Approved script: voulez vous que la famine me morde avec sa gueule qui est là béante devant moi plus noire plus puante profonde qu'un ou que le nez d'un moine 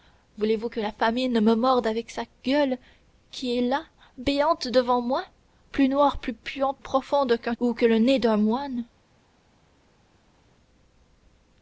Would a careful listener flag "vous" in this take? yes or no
no